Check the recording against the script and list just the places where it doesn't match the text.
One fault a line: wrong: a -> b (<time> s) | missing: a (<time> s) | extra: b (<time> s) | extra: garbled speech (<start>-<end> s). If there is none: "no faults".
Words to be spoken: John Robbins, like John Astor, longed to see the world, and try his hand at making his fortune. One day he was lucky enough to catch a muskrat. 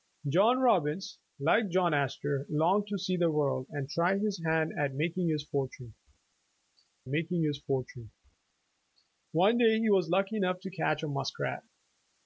extra: making his fortune (7.1 s)